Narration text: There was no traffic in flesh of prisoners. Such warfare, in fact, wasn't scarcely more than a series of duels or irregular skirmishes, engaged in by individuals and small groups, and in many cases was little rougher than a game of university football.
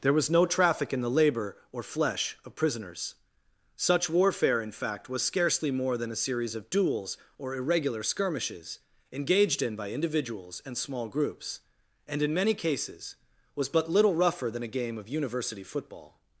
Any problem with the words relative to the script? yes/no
yes